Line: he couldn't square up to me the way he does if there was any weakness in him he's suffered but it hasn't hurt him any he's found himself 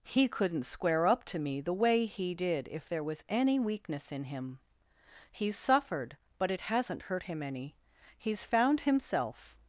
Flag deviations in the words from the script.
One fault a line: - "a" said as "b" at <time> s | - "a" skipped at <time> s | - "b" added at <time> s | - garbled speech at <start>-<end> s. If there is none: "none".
- "does" said as "did" at 2.3 s